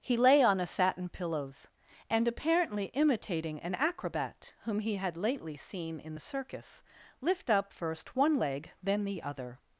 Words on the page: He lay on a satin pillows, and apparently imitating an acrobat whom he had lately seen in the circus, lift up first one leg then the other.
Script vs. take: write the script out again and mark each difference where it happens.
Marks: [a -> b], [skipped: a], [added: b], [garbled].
He lay on a satin pillows, and apparently imitating an acrobat whom he had lately seen in the circus, lift up first one leg then the other.